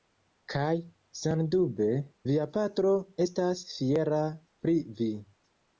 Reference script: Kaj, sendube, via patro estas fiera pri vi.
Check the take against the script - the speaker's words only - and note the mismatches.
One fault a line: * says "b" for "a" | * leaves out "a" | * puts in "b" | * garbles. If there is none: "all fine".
all fine